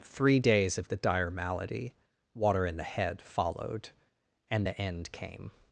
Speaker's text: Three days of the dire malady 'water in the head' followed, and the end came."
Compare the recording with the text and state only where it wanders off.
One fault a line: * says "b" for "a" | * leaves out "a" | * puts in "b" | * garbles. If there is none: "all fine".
all fine